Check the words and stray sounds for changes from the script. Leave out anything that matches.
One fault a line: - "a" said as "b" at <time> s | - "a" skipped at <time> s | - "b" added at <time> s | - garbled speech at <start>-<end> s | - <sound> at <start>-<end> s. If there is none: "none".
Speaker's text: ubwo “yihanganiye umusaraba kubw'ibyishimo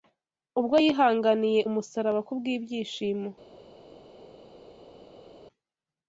none